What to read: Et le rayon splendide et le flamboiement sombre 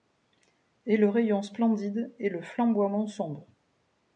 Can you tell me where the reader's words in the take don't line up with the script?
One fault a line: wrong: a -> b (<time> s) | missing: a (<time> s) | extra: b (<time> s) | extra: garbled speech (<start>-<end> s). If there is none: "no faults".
no faults